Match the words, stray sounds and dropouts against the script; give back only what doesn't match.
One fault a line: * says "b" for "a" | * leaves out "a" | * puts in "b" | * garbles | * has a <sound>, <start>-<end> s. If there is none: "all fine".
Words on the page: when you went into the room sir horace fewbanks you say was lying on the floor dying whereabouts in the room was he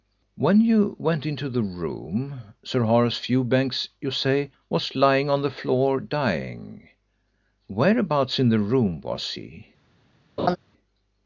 * has a laugh, 10.4-10.6 s